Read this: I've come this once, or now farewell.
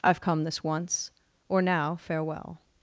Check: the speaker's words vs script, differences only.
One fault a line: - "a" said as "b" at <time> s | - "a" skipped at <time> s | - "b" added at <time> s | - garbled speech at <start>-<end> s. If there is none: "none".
none